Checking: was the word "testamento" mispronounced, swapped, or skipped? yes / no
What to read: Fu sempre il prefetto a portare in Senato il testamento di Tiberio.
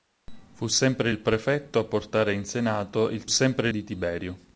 yes